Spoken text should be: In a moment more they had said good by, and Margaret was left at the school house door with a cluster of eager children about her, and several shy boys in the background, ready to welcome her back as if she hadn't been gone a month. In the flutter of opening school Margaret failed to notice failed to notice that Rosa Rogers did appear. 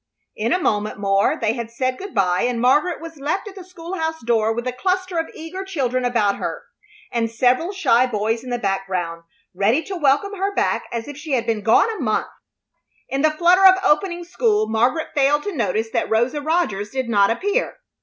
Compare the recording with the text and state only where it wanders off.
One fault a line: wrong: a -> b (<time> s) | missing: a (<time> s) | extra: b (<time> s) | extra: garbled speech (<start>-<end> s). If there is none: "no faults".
wrong: hadn't -> had (11.3 s)
missing: failed to notice (15.9 s)
extra: not (17.1 s)